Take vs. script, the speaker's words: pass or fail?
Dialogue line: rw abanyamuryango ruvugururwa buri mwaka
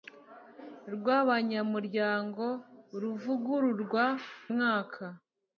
fail